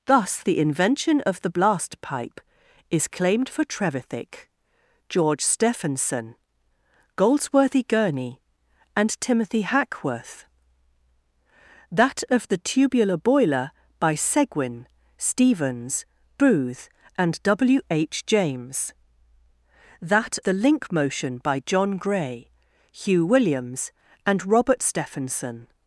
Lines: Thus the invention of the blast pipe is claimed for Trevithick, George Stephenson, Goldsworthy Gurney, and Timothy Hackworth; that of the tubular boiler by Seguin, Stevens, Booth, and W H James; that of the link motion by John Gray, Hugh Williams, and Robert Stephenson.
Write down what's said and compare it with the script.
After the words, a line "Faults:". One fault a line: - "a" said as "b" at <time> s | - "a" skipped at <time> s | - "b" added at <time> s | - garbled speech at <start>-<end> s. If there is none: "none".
Thus the invention of the blast pipe is claimed for Trevithick, George Stephenson, Goldsworthy Gurney, and Timothy Hackworth; that of the tubular boiler by Seguin, Stevens, Booth, and W H James; that the link motion by John Gray, Hugh Williams, and Robert Stephenson.
Faults:
- "of" skipped at 20.4 s